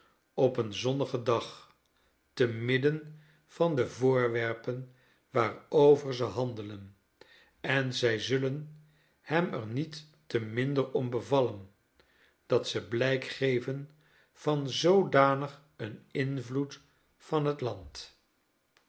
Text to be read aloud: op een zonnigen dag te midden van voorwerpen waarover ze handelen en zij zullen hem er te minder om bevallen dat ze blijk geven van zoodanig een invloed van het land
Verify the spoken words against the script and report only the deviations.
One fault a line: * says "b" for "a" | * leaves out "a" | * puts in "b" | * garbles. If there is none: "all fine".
* puts in "de"
* puts in "niet"